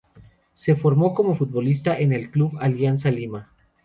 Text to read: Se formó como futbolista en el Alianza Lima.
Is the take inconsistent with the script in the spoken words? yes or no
yes